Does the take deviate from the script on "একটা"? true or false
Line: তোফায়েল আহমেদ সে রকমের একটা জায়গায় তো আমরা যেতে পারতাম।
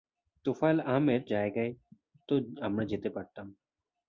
true